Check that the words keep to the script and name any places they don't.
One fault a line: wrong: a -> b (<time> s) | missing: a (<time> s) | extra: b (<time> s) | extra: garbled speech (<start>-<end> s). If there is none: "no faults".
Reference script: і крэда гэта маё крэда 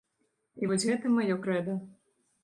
wrong: крэда -> вось (0.7 s)